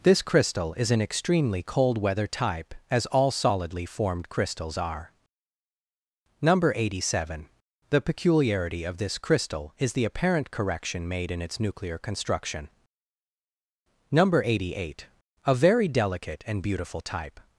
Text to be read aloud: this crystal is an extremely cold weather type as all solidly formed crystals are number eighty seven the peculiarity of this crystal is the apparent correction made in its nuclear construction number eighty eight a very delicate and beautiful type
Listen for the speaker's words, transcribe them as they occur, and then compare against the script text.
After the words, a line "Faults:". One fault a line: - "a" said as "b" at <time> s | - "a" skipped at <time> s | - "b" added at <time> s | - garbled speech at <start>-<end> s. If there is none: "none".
this crystal is an extremely cold weather type as all solidly formed crystals are number eighty seven the peculiarity of this crystal is the apparent correction made in its nuclear construction number eighty eight a very delicate and beautiful type
Faults:
none